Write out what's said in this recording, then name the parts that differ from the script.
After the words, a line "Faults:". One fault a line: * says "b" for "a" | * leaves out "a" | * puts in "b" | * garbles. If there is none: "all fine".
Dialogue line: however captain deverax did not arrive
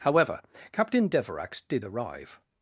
however captain deverax did arrive
Faults:
* leaves out "not"